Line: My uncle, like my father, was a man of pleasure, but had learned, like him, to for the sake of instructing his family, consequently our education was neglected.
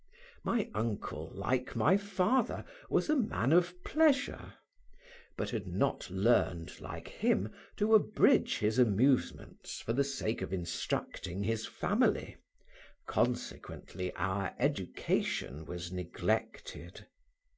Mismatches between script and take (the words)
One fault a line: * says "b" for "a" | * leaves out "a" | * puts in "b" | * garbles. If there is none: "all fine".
* puts in "not"
* puts in "abridge his amusements"